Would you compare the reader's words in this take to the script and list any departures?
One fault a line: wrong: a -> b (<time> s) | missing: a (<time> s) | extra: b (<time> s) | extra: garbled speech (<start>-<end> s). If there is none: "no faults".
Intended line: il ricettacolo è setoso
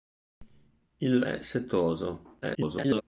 missing: ricettacolo (1.2 s)
extra: garbled speech (2.4-3.0 s)